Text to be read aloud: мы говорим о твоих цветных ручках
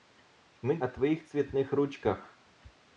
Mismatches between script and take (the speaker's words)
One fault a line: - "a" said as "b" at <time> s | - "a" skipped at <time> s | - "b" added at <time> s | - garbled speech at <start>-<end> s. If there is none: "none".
- "говорим" skipped at 0.8 s